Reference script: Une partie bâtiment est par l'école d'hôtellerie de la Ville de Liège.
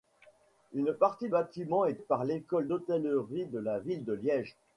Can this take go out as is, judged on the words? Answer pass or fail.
pass